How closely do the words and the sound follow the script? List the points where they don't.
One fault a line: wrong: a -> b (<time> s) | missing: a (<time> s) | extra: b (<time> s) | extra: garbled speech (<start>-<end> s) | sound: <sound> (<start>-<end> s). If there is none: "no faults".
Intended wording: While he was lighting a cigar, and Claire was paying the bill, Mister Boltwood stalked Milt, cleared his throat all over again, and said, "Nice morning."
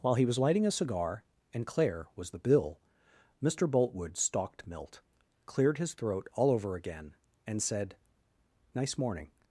missing: paying (2.3 s)